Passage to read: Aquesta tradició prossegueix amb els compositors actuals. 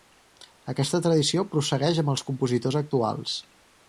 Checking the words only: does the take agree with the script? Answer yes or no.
yes